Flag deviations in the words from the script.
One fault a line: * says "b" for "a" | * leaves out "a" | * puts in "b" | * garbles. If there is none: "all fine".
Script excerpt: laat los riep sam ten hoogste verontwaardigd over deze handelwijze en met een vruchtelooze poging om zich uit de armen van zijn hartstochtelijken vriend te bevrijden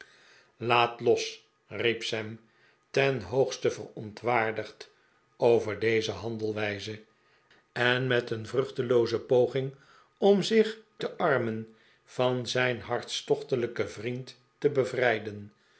* leaves out "uit"